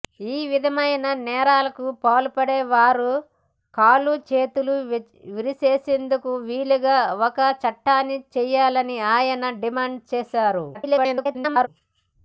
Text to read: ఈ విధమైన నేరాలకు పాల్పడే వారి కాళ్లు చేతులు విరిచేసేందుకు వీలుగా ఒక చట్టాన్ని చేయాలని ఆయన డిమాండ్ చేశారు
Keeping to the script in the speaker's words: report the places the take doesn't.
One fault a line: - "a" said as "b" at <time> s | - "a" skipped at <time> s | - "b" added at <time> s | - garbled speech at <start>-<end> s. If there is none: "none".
- garbled speech at 10.7-11.7 s